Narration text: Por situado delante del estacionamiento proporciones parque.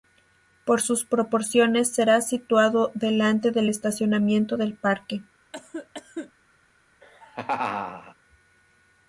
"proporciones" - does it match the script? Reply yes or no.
no